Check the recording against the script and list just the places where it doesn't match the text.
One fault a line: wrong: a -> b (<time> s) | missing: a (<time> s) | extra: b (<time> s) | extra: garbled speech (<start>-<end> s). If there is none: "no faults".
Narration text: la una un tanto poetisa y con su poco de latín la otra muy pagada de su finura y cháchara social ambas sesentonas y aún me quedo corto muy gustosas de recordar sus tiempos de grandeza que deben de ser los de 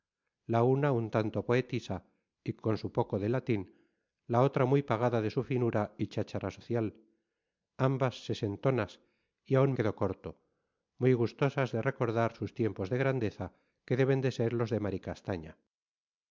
missing: me (9.7 s)